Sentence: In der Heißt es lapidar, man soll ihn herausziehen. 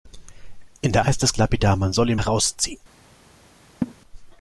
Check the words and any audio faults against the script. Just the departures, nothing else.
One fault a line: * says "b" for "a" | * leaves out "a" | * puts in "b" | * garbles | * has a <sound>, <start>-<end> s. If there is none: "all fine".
* has a laugh, 3.8-3.9 s